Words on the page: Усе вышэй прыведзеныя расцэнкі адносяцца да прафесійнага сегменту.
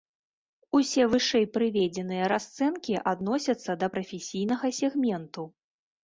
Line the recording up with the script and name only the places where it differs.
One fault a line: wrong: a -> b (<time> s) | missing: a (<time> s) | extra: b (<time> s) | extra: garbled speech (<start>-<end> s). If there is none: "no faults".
no faults